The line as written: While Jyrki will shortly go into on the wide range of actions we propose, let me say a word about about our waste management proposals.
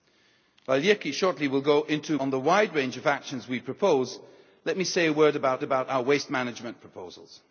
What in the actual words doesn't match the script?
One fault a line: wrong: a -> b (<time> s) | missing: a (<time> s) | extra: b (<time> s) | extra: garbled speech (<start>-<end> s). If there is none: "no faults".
no faults